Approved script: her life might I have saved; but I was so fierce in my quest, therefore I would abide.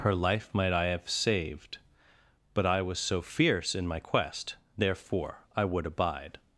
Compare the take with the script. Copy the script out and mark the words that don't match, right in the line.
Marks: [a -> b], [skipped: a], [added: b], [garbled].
her life might I have saved; but I was so fierce in my quest, therefore I would abide.